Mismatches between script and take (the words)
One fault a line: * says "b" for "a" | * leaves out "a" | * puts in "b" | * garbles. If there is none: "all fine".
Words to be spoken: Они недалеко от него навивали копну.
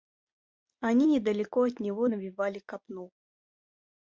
all fine